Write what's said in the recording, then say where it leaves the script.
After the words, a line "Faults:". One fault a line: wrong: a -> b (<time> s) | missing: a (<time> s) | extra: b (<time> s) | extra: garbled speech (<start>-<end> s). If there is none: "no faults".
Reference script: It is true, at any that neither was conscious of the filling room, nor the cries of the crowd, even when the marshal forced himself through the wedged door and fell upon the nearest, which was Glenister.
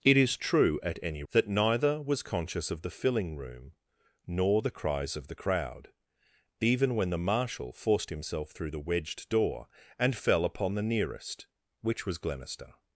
It is true, at any that neither was conscious of the filling room, nor the cries of the crowd, even when the marshal forced himself through the wedged door and fell upon the nearest, which was Glenister.
Faults:
no faults